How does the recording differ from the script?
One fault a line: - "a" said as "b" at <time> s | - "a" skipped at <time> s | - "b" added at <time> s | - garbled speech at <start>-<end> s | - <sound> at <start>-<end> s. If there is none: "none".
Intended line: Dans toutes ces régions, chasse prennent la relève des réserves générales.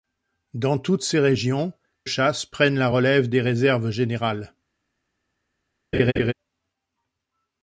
- laugh at 5.9-6.3 s